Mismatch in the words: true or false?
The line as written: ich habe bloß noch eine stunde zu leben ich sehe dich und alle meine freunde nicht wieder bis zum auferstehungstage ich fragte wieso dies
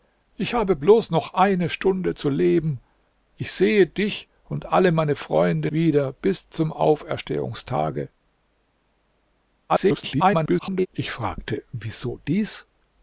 true